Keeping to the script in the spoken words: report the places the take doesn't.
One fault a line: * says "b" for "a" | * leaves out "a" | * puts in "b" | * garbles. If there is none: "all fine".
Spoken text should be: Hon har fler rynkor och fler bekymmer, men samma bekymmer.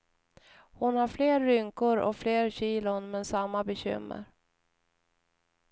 * says "kilon" for "bekymmer"